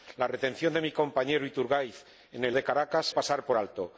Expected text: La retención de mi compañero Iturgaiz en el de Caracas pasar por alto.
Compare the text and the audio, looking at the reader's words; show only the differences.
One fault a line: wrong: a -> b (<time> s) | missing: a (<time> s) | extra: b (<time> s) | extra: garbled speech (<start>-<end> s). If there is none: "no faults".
no faults